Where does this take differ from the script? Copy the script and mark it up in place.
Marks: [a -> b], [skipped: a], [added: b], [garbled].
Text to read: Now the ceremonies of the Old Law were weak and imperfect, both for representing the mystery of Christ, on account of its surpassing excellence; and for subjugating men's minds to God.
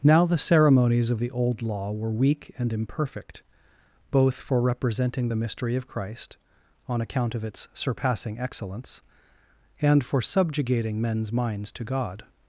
Now the ceremonies of the Old Law were weak and imperfect, both for representing the mystery of Christ, on account of its surpassing excellence; and for subjugating men's minds to God.